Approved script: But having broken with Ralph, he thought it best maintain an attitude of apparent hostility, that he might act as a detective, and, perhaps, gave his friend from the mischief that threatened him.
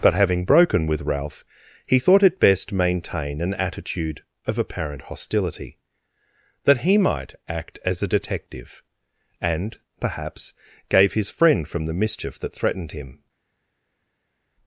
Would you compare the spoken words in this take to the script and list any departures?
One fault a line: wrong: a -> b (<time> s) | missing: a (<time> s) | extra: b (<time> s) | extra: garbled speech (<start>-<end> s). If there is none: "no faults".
no faults